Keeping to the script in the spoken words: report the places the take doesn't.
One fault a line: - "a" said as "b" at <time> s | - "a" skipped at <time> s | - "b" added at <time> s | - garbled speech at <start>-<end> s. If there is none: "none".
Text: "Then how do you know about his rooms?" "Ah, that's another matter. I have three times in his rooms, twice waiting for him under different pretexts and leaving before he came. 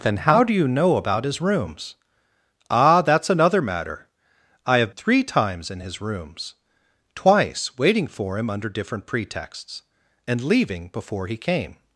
none